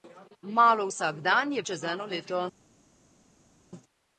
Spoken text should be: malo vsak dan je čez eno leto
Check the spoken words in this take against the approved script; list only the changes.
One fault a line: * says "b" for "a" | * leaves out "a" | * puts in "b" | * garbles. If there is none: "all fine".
all fine